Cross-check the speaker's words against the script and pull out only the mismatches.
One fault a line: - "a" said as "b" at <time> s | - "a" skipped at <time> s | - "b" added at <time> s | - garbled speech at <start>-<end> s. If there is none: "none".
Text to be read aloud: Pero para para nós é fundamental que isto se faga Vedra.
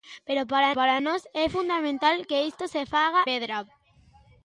none